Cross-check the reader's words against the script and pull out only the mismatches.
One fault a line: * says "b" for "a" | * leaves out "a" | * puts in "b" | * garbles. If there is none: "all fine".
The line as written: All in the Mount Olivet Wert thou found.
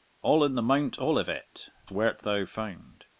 all fine